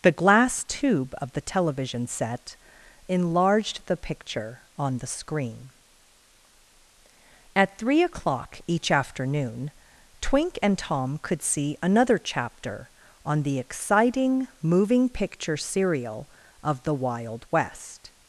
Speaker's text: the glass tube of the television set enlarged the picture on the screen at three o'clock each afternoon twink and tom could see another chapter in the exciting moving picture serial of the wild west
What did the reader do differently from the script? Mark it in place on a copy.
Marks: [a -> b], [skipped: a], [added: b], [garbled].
the glass tube of the television set enlarged the picture on the screen at three o'clock each afternoon twink and tom could see another chapter [in -> on] the exciting moving picture serial of the wild west